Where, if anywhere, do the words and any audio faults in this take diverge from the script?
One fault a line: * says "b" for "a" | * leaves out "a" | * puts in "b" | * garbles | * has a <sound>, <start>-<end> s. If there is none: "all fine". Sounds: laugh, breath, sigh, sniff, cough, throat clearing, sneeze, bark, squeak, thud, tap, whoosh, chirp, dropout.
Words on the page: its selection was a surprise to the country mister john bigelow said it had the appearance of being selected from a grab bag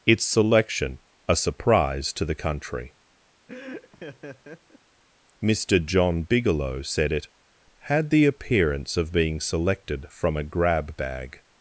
* leaves out "was"
* has a laugh, 3.5-4.8 s